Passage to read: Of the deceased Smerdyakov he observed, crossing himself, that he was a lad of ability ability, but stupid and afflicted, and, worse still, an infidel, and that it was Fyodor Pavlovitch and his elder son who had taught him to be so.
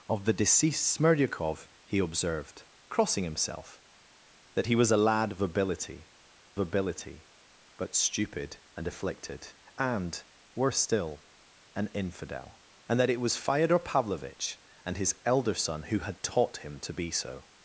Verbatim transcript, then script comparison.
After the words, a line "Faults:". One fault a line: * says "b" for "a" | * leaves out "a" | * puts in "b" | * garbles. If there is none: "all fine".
Of the deceased Smerdyakov he observed, crossing himself, that he was a lad of ability ability, but stupid and afflicted, and, worse still, an infidel, and that it was Fyodor Pavlovitch and his elder son who had taught him to be so.
Faults:
all fine